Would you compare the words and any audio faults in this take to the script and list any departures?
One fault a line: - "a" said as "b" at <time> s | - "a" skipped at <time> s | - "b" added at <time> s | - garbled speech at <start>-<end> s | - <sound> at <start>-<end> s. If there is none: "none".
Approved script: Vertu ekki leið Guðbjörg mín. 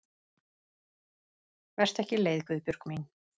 none